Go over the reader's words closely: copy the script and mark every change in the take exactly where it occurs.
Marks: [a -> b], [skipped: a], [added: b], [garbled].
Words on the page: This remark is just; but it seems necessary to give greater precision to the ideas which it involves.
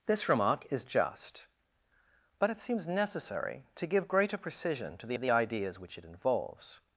This remark is just; but it seems necessary to give greater precision to the [added: the] ideas which it involves.